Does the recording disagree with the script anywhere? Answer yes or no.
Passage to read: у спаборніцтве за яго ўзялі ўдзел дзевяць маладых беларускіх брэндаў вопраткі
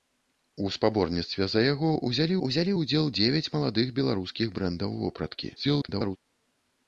yes